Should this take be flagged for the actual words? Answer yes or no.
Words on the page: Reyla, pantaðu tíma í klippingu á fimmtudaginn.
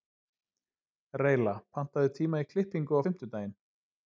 no